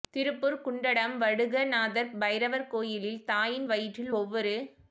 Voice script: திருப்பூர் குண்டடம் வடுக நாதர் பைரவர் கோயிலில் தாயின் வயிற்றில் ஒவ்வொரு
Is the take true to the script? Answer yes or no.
yes